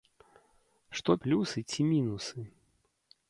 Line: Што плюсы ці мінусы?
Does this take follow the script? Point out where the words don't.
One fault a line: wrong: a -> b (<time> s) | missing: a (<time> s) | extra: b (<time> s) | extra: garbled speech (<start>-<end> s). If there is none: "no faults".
no faults